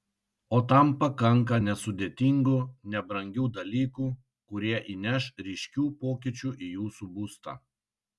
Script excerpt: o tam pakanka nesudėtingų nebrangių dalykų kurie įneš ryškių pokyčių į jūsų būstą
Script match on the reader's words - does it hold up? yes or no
yes